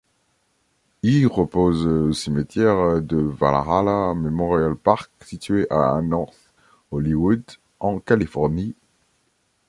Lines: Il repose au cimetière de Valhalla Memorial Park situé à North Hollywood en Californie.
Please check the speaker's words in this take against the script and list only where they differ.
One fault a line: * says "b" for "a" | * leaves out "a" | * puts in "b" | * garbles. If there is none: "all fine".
all fine